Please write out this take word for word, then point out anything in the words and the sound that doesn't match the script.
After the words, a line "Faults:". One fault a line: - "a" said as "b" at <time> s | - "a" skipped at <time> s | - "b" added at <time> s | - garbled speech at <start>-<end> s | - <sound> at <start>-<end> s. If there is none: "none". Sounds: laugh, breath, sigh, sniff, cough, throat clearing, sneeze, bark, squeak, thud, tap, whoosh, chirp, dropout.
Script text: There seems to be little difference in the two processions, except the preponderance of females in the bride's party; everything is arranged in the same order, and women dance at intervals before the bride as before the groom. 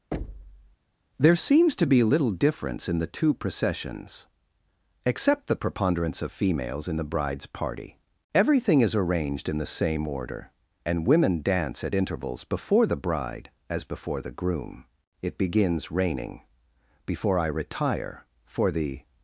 There seems to be little difference in the two processions, except the preponderance of females in the bride's party; everything is arranged in the same order, and women dance at intervals before the bride as before the groom. It begins raining before I retire for the
Faults:
- thud at 0.1-0.8 s
- "It begins raining before I retire for the" added at 15.2 s